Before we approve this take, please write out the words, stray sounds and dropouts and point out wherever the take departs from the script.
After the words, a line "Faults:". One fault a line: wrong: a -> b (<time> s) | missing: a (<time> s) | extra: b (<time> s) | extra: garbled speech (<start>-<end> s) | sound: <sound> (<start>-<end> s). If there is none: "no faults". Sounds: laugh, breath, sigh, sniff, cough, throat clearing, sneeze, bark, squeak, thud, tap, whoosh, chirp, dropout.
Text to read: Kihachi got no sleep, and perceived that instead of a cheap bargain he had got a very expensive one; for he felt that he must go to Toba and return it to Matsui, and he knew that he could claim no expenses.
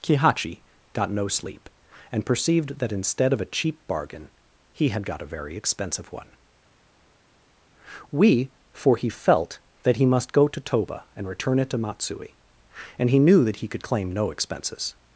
Kihachi got no sleep, and perceived that instead of a cheap bargain he had got a very expensive one; we for he felt that he must go to Toba and return it to Matsui, and he knew that he could claim no expenses.
Faults:
extra: we (8.1 s)